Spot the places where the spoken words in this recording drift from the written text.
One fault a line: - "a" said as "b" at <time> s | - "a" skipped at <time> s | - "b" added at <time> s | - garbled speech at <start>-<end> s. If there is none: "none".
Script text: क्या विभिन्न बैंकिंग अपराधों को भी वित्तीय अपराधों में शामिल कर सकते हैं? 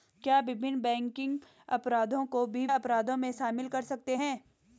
- "वित्तीय" skipped at 2.6 s